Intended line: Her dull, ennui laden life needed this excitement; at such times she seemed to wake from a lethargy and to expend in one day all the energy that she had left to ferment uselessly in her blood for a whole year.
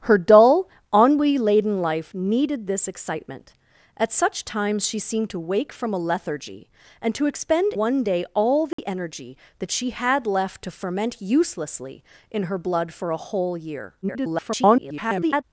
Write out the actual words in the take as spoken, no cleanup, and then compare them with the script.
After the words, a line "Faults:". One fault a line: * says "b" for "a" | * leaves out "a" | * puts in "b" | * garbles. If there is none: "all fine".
Her dull, ennui laden life needed this excitement; at such times she seemed to wake from a lethargy and to expend one day all the energy that she had left to ferment uselessly in her blood for a whole year. [garbled]
Faults:
* leaves out "in"
* garbles